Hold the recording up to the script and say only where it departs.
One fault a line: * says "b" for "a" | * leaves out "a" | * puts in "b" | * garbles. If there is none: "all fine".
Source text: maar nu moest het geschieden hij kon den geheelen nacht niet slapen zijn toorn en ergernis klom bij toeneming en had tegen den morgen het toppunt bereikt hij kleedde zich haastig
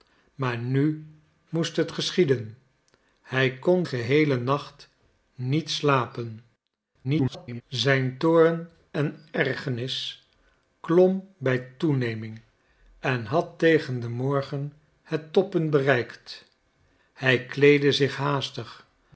* leaves out "den"
* garbles